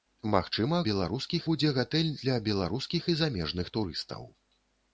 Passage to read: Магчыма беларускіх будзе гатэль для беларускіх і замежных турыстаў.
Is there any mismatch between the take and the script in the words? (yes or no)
no